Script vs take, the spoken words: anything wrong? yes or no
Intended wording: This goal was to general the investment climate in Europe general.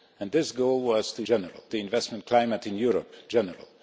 no